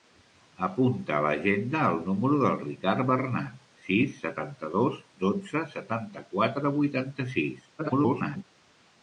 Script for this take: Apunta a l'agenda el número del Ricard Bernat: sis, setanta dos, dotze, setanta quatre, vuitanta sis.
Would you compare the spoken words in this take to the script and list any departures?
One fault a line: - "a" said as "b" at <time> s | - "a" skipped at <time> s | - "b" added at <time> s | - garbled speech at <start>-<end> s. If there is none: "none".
- garbled speech at 7.8-8.4 s